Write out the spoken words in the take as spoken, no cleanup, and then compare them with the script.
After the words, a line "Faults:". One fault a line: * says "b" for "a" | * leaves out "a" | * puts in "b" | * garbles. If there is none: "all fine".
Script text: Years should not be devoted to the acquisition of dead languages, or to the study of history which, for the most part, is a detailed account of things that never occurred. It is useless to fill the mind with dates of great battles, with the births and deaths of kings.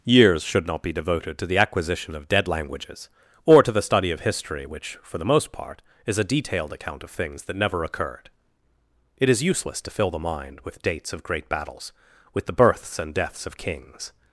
Years should not be devoted to the acquisition of dead languages, or to the study of history which, for the most part, is a detailed account of things that never occurred. It is useless to fill the mind with dates of great battles, with the births and deaths of kings.
Faults:
all fine